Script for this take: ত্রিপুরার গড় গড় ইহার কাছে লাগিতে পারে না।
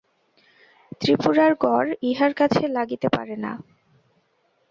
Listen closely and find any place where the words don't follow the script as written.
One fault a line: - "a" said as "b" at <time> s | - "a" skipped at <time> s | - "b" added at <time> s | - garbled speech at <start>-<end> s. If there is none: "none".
- "গড়" skipped at 1.9 s